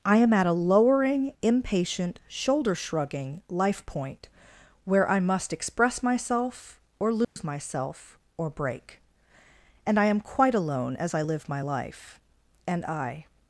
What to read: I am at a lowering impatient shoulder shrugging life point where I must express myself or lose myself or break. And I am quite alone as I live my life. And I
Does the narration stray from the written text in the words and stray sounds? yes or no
yes